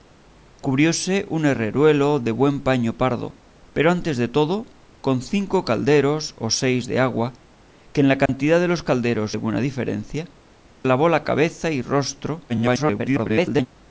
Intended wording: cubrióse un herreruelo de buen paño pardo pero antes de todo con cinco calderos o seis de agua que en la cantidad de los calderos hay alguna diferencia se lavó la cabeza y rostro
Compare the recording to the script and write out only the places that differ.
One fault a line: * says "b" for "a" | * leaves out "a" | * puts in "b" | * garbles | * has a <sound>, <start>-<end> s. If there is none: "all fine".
* has a dropout, 8.3-8.3 s
* leaves out "hay"
* leaves out "se"
* garbles